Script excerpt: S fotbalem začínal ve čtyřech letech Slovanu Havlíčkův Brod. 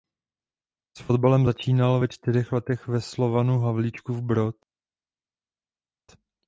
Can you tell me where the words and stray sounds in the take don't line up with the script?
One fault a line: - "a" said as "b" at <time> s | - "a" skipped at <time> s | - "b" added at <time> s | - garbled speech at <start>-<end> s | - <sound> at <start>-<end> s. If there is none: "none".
- "ve" added at 2.9 s